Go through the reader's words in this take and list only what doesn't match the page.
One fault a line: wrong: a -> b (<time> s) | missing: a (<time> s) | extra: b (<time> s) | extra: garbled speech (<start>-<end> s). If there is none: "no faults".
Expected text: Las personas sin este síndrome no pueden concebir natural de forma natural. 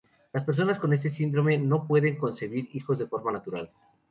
wrong: sin -> con (0.8 s)
wrong: natural -> hijos (2.7 s)